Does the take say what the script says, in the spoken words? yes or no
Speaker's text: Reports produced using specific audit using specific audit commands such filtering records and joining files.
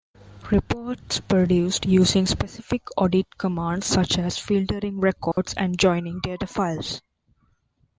no